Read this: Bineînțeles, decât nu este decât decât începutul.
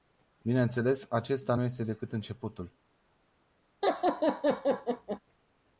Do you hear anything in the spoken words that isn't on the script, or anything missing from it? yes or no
yes